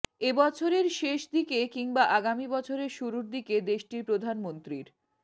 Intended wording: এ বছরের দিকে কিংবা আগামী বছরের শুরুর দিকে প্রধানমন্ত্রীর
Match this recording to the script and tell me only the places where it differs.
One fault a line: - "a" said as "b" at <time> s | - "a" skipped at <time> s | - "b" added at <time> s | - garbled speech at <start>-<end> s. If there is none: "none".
- "শেষ" added at 1.0 s
- "দেশটির" added at 3.7 s